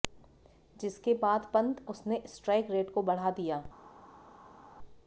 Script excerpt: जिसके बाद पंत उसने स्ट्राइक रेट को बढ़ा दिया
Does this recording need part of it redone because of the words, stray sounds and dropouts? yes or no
no